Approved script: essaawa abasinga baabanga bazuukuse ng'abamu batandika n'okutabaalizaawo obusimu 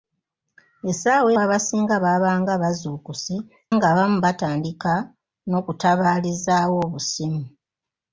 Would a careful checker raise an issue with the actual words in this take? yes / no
no